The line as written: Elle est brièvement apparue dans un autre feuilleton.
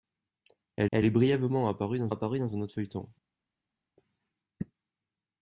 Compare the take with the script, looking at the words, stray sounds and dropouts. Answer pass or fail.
fail